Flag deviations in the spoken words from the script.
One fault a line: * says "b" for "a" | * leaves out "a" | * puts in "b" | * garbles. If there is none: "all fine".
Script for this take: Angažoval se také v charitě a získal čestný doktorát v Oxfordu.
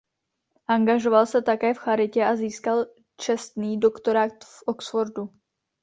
all fine